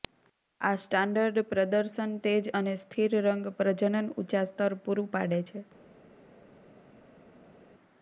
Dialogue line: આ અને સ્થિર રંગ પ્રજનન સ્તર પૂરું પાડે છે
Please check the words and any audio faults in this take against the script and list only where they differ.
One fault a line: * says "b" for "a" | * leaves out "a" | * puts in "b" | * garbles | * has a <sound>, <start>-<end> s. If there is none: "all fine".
* puts in "સ્ટાન્ડર્ડ પ્રદર્શન તેજ"
* puts in "ઊંચા"